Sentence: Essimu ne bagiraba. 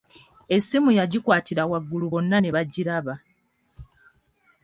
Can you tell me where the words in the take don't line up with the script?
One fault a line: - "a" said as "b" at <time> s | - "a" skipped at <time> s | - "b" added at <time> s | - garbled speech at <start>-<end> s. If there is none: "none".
- "yagikwatira waggulu bonna" added at 1.0 s